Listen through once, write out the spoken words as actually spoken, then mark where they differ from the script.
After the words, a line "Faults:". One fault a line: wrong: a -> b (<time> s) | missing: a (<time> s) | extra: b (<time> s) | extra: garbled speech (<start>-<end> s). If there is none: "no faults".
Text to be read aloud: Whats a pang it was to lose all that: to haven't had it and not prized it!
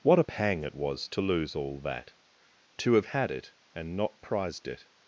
What a pang it was to lose all that: to have had it and not prized it!
Faults:
wrong: Whats -> What (0.0 s)
wrong: haven't -> have (2.9 s)